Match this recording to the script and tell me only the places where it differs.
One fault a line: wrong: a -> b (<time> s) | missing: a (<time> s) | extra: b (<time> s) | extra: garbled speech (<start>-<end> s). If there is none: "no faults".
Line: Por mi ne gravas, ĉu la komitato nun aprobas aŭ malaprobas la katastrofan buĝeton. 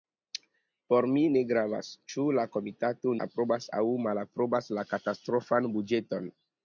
missing: nun (3.1 s)